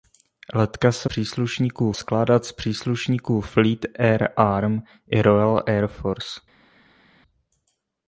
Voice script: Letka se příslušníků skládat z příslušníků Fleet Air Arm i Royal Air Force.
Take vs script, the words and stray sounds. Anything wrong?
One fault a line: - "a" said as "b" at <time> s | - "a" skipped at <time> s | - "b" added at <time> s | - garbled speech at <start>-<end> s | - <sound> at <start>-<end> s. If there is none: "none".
none